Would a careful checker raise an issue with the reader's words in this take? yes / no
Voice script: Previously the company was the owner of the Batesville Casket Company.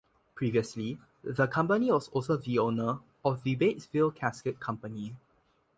yes